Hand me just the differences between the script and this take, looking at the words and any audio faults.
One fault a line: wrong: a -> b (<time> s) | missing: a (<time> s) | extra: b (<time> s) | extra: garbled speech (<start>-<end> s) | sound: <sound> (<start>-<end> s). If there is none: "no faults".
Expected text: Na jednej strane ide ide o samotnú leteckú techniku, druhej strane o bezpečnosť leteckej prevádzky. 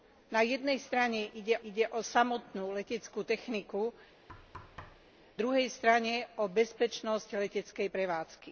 sound: thud (4.3-5.1 s)